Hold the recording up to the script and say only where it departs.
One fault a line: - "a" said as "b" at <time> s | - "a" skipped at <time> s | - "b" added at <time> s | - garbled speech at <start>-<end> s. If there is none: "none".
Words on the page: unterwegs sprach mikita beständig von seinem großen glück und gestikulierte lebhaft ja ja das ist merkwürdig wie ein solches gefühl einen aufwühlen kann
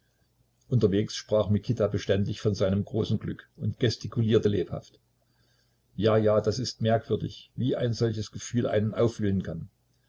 none